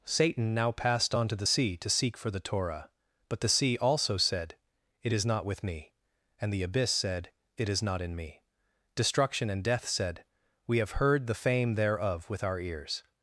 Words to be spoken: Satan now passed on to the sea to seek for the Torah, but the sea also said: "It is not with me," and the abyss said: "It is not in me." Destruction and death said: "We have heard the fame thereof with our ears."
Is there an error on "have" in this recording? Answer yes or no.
no